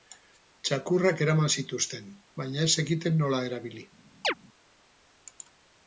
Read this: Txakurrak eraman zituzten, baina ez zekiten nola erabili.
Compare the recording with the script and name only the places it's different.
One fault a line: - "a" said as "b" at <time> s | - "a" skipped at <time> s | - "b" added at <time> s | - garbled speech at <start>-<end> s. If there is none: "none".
none